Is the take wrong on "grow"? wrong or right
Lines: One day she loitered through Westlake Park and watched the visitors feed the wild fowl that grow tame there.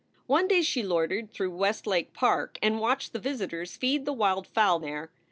wrong